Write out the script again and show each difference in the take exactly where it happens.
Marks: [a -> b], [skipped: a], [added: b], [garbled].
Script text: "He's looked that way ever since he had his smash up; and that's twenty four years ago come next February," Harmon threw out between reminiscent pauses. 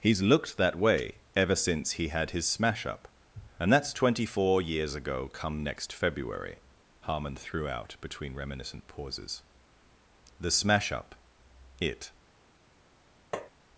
"He's looked that way ever since he had his smash up; and that's twenty four years ago come next February," Harmon threw out between reminiscent pauses. [added: The smash up it]